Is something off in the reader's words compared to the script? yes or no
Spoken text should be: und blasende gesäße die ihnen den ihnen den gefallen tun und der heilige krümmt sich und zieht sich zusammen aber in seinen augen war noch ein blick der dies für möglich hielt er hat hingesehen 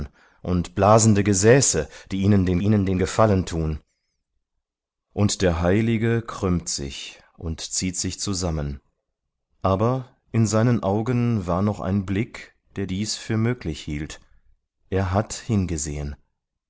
no